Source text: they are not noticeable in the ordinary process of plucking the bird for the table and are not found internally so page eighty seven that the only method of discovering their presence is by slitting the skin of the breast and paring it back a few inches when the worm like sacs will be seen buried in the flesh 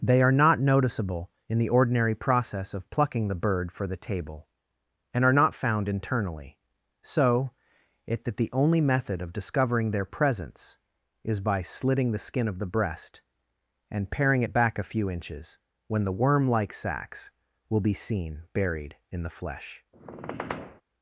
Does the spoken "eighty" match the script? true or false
false